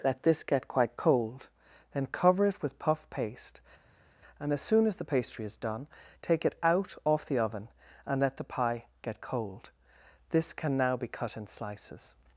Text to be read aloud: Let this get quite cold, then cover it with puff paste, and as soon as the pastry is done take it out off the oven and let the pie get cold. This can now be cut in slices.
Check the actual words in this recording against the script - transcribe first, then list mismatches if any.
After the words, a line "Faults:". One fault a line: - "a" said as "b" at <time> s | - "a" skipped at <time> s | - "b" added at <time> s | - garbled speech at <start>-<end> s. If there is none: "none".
Let this get quite cold, then cover it with puff paste, and as soon as the pastry is done take it out off the oven and let the pie get cold. This can now be cut in slices.
Faults:
none